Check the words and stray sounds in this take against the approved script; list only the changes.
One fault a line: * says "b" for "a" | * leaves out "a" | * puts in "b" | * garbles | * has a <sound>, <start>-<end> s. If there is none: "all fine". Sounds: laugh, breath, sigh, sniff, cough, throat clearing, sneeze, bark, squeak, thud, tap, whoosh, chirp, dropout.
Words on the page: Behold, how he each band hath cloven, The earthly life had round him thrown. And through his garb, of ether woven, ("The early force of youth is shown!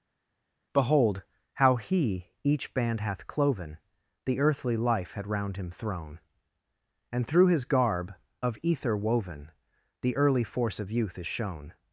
all fine